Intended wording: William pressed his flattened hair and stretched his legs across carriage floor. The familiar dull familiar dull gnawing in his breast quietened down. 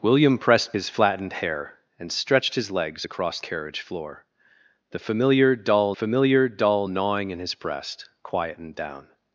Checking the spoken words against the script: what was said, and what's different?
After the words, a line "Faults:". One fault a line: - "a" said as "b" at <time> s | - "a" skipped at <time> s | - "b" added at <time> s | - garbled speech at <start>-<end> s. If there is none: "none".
William pressed his flattened hair and stretched his legs across carriage floor. The familiar dull familiar dull gnawing in his breast quietened down.
Faults:
none